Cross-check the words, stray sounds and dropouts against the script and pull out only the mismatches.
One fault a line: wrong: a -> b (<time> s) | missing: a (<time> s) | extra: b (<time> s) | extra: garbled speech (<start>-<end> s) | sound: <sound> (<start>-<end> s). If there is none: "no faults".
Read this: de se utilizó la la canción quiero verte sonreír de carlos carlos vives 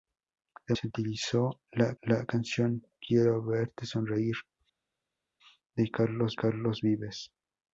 no faults